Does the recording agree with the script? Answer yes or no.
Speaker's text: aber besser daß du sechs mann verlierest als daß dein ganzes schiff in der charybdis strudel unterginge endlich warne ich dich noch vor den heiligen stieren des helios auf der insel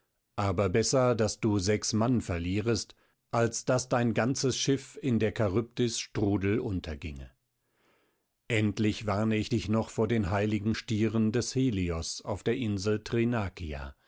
yes